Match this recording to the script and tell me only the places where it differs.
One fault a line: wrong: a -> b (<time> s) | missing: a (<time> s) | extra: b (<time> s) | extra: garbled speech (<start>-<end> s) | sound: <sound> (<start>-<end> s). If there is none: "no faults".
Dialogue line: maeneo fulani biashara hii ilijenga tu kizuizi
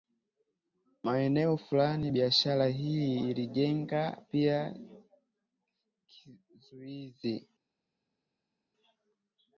wrong: tu -> pia (4.3 s)